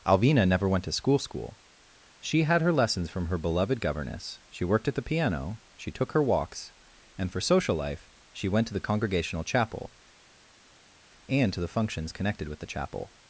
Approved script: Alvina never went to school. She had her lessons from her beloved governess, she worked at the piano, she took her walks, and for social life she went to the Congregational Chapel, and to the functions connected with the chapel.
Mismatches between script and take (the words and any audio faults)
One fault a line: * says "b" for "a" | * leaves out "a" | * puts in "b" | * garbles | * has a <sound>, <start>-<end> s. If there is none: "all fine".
* puts in "school"